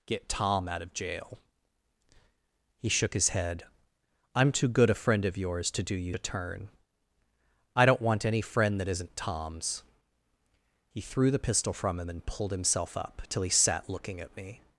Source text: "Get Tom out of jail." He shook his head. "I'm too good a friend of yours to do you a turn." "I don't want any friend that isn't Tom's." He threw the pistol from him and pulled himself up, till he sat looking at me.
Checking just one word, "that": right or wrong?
right